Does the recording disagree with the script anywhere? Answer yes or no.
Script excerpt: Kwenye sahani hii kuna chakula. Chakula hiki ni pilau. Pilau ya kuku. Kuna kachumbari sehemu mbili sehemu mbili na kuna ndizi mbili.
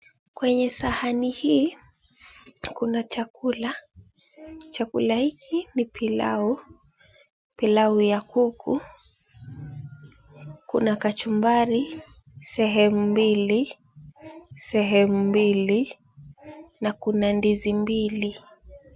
no